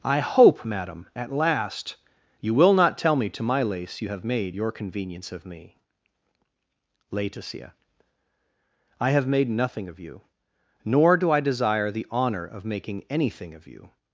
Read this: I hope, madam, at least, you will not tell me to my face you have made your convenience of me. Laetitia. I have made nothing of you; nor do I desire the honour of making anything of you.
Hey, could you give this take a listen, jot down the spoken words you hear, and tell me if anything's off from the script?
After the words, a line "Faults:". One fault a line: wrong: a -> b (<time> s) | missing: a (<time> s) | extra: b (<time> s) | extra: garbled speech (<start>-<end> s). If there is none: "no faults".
I hope, madam, at last, you will not tell me to my lace you have made your convenience of me. Laetitia. I have made nothing of you; nor do I desire the honour of making anything of you.
Faults:
wrong: least -> last (1.3 s)
wrong: face -> lace (3.6 s)